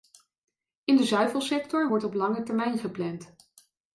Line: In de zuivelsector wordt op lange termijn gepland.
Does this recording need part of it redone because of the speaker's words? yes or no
no